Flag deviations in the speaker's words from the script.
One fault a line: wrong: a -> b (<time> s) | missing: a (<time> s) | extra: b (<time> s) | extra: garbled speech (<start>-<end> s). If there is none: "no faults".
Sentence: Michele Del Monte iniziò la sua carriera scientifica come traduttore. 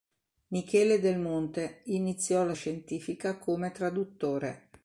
missing: sua carriera (2.5 s)